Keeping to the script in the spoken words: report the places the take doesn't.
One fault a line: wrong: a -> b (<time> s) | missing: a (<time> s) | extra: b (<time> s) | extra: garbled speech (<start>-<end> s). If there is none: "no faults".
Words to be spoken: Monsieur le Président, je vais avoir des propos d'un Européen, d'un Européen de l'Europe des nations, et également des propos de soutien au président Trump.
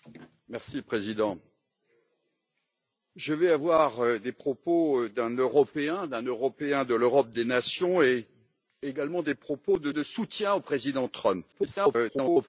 extra: de (9.9 s)
extra: garbled speech (11.5-12.5 s)